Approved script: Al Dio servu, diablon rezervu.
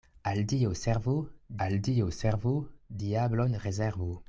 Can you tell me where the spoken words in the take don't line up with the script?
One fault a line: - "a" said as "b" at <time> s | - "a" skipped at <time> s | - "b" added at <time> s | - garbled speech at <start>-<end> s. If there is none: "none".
- "al Dio servu" added at 1.6 s